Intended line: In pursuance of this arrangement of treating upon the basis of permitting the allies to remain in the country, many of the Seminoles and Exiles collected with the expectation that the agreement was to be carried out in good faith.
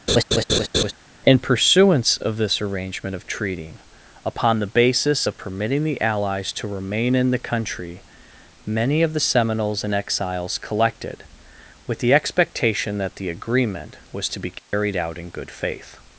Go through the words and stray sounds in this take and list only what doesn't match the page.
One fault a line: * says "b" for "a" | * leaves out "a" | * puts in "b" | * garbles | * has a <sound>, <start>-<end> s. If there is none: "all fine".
* has a laugh, 0.1-0.9 s
* has a dropout, 14.6-14.7 s